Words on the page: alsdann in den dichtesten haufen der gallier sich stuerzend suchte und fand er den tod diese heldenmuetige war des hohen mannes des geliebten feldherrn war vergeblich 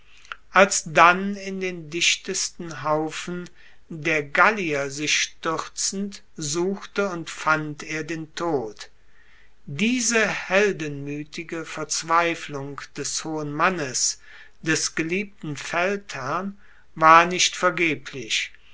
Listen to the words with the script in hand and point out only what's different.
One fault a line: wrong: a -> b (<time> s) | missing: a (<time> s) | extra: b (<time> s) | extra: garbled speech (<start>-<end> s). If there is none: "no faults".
wrong: war -> verzweiflung (11.7 s)
extra: nicht (17.3 s)